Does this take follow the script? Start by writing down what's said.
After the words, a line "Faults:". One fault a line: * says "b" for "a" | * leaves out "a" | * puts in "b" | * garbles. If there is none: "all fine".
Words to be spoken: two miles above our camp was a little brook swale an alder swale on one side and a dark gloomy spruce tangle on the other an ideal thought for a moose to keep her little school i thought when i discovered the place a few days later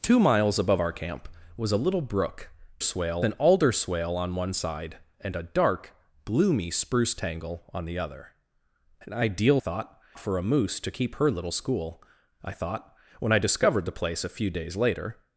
two miles above our camp was a little brook swale an alder swale on one side and a dark gloomy spruce tangle on the other an ideal thought for a moose to keep her little school i thought when i discovered the place a few days later
Faults:
all fine